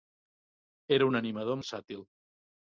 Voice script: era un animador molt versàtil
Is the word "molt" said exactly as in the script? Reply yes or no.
no